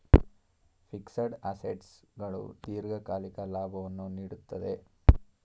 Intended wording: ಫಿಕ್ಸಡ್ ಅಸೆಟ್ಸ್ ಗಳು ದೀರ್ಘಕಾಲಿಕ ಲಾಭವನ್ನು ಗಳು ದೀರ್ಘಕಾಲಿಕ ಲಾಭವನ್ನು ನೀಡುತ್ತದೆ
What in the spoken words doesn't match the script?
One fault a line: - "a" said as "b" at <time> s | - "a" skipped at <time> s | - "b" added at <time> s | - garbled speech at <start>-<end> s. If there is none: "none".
- "ಗಳು ದೀರ್ಘಕಾಲಿಕ ಲಾಭವನ್ನು" skipped at 4.1 s